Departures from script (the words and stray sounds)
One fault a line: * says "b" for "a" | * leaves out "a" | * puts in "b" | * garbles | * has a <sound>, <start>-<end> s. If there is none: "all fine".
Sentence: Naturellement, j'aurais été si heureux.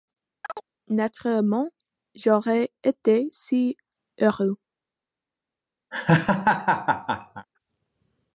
* has a chirp, 0.4-0.6 s
* has a laugh, 5.9-7.5 s